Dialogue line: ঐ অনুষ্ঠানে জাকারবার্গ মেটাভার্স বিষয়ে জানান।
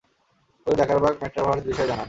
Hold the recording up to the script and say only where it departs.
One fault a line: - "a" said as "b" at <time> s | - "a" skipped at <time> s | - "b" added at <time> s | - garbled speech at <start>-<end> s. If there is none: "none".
- "অনুষ্ঠানে" skipped at 0.7 s